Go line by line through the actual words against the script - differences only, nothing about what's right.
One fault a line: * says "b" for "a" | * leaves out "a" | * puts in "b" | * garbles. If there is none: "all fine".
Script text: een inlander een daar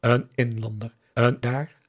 all fine